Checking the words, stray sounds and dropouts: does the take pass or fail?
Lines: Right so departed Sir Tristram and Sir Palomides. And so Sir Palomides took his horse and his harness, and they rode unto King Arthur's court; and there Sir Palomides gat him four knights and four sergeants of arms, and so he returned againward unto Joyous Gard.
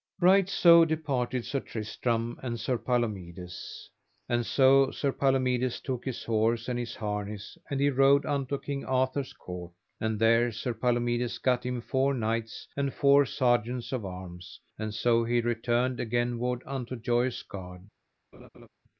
fail